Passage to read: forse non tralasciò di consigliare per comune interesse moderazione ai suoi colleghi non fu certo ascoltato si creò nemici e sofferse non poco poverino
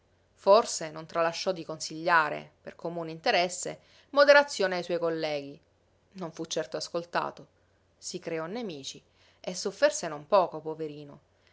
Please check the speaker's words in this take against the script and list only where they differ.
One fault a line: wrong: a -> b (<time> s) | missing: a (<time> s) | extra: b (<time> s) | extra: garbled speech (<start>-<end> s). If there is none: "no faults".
no faults